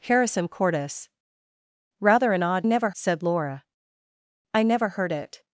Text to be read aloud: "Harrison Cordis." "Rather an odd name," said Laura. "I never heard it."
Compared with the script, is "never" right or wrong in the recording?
right